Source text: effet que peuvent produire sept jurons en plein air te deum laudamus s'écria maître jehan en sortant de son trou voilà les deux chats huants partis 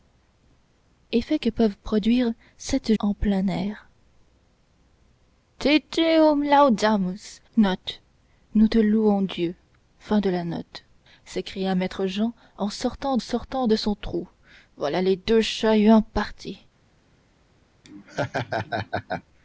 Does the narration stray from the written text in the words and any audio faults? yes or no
yes